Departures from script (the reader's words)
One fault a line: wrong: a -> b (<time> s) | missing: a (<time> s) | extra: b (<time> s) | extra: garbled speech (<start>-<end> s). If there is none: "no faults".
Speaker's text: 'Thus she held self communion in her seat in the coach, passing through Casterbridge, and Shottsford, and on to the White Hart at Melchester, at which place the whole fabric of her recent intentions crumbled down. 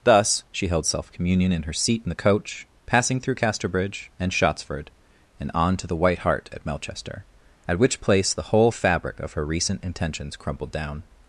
no faults